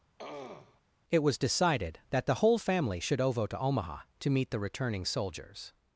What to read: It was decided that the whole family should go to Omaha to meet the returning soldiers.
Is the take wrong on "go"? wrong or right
wrong